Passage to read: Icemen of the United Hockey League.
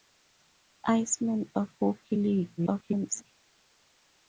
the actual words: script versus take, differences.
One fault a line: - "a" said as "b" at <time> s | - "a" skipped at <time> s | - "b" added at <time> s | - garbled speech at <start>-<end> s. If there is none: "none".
- "the United" skipped at 1.7 s
- garbled speech at 2.6-3.2 s